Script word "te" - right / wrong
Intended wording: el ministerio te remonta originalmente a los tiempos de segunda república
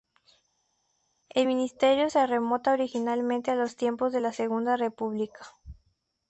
wrong